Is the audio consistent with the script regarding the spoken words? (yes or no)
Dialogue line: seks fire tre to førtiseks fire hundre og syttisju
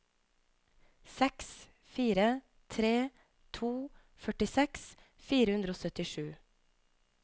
yes